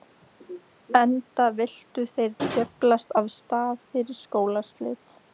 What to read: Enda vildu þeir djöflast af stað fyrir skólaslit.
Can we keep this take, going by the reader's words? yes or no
yes